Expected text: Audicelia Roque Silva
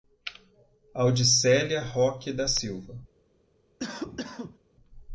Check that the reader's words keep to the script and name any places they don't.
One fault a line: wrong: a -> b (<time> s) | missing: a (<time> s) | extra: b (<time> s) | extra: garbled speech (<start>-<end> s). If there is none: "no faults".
extra: da (2.3 s)